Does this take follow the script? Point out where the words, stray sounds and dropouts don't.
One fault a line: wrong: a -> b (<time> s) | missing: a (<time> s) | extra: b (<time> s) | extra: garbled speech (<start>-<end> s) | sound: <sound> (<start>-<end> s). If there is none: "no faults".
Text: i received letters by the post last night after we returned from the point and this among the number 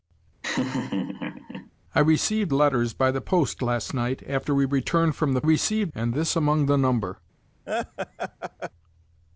sound: laugh (0.4-1.7 s)
wrong: point -> received (5.4 s)
sound: laugh (7.7-8.7 s)